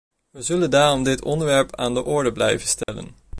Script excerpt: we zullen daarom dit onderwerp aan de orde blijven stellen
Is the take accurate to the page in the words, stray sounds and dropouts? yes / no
no